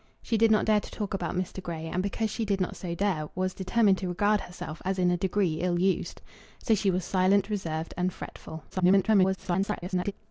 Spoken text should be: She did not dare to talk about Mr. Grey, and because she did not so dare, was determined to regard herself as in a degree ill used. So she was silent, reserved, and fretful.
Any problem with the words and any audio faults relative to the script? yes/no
yes